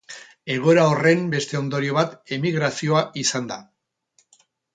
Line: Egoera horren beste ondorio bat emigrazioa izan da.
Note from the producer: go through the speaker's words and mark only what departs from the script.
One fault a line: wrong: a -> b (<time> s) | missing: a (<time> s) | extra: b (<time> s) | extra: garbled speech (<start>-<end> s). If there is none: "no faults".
no faults